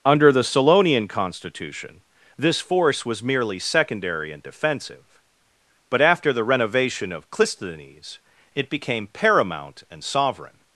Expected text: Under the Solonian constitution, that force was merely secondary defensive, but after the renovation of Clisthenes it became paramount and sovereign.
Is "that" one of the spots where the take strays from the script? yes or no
yes